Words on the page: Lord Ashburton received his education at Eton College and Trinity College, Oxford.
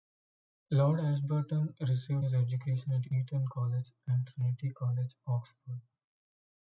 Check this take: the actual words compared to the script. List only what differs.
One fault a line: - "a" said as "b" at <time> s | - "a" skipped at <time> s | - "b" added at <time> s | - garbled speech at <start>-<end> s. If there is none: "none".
none